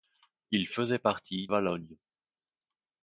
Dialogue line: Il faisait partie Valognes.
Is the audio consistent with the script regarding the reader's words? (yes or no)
yes